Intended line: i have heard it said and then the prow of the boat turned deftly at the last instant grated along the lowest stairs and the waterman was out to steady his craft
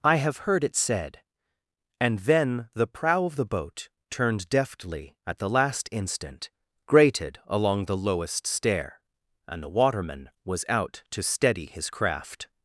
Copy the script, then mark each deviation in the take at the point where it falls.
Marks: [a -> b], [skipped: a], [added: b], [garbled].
i have heard it said and then the prow of the boat turned deftly at the last instant grated along the lowest [stairs -> stair] and the waterman was out to steady his craft